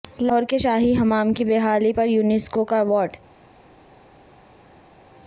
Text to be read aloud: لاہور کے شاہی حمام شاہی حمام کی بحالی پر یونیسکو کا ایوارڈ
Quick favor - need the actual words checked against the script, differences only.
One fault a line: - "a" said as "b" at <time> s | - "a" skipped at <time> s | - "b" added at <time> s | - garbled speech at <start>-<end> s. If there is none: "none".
- "شاہی حمام" skipped at 1.3 s